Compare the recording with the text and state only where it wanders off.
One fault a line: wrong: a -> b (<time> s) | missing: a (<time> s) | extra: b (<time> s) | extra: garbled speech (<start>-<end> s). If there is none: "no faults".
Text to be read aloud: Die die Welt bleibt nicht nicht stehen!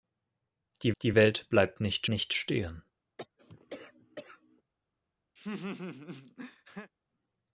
no faults